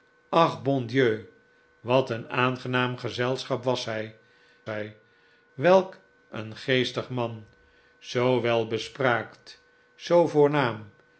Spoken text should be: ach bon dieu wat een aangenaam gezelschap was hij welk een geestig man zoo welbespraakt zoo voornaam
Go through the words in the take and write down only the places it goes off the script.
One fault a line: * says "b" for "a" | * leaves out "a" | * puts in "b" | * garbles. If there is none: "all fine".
* puts in "hij"